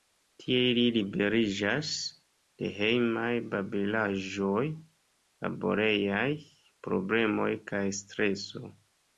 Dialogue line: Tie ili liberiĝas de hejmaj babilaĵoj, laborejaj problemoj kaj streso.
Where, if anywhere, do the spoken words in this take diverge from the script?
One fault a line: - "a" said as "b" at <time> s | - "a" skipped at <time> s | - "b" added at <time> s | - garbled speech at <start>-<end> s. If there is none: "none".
none